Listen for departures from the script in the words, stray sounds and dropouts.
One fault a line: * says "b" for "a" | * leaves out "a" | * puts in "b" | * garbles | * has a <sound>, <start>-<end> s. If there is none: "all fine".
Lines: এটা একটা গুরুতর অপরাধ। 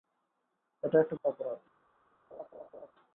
* leaves out "গুরুতর"
* has a laugh, 2.3-2.9 s